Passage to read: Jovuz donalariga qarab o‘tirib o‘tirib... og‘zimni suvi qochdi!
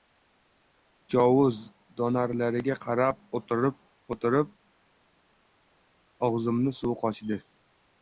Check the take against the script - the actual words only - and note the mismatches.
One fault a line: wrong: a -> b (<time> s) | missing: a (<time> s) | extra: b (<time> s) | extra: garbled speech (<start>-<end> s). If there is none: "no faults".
no faults